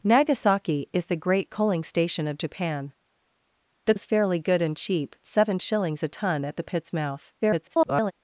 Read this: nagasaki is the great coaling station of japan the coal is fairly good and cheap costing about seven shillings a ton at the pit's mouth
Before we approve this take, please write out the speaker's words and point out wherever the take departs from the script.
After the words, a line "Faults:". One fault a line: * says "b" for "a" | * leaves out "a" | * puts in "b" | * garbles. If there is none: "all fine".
nagasaki is the great coaling station of japan the is fairly good and cheap seven shillings a ton at the pit's mouth [garbled]
Faults:
* leaves out "coal"
* leaves out "costing about"
* garbles